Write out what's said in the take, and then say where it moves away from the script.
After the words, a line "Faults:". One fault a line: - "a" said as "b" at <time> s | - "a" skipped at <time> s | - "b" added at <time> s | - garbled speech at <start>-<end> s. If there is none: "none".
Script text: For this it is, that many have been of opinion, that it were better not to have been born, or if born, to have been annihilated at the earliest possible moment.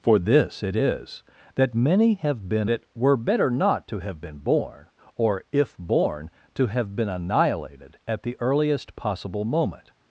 For this it is, that many have been it were better not to have been born, or if born, to have been annihilated at the earliest possible moment.
Faults:
- "of opinion that" skipped at 2.7 s